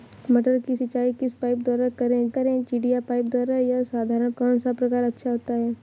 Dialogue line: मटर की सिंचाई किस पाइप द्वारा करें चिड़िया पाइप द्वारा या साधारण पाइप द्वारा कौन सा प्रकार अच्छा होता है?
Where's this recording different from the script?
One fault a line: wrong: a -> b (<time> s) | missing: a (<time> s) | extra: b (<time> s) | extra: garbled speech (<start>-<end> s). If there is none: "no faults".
extra: करें (2.3 s)
missing: पाइप द्वारा (4.3 s)